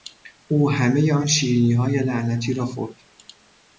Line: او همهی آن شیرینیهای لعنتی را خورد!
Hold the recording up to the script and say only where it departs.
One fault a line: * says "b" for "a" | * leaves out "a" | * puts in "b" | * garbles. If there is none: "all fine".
all fine